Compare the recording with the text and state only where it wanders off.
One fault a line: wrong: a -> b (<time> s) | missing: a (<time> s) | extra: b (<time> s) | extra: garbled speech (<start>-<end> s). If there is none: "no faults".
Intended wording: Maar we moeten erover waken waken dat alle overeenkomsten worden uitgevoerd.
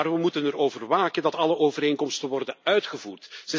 missing: waken (1.2 s)